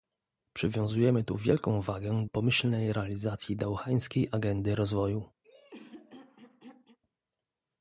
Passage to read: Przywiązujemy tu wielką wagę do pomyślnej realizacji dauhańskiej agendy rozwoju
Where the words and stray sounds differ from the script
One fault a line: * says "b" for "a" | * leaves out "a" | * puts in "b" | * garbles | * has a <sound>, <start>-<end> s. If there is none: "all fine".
* leaves out "do"
* has a throat clearing, 5.4-7.0 s